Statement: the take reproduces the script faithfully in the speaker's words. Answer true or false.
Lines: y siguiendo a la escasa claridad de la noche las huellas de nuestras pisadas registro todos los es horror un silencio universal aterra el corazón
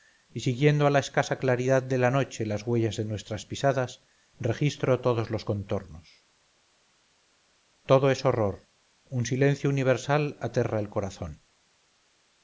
false